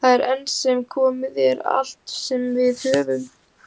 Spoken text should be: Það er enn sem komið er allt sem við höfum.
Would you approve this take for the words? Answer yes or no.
yes